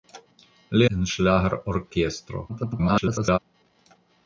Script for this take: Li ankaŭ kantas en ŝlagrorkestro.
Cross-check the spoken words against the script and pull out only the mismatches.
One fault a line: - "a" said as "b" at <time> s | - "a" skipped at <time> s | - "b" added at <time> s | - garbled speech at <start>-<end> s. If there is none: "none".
- "ankaŭ kantas" skipped at 0.8 s
- garbled speech at 2.5-3.4 s